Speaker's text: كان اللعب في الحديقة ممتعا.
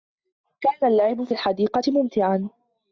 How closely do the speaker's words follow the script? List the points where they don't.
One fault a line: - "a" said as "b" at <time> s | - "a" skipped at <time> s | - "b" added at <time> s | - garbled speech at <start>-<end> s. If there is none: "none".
none